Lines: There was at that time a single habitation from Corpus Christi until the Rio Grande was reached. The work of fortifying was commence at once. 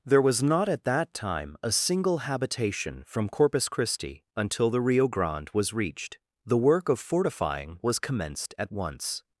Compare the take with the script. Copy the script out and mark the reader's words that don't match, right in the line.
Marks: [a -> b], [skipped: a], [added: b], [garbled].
There was [added: not] at that time a single habitation from Corpus Christi until the Rio Grande was reached. The work of fortifying was [commence -> commenced] at once.